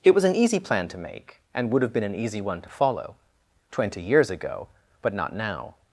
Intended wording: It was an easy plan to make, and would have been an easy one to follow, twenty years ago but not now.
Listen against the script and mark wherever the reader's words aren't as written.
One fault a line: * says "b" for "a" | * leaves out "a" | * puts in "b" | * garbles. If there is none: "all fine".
all fine